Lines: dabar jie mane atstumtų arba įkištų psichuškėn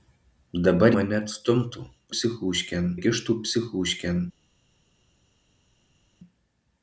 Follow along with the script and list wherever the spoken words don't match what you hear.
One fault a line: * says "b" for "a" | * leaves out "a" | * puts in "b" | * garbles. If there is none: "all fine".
* leaves out "jie"
* says "psichuškėn" for "arba"